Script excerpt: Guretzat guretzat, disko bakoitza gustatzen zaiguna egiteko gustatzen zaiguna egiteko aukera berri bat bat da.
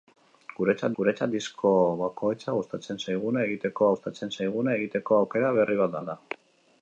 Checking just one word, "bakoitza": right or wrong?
right